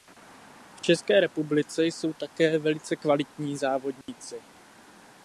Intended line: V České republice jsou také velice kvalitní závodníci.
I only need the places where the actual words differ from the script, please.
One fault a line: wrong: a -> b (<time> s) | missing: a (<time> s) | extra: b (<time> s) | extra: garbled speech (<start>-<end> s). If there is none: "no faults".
no faults